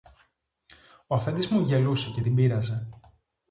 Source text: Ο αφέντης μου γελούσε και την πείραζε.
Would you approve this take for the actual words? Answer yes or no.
yes